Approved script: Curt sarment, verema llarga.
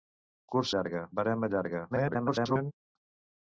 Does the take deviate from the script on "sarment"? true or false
true